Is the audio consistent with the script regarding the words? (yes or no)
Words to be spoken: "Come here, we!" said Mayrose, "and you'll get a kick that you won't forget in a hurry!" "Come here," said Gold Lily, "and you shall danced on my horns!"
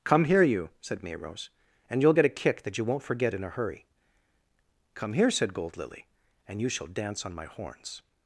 no